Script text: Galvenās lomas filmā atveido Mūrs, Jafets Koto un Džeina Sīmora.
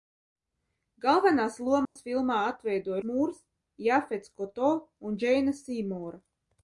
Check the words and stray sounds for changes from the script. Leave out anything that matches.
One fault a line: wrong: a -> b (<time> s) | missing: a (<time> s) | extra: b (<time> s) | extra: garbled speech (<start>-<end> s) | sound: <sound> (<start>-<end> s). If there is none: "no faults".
sound: dropout (1.8-2.0 s)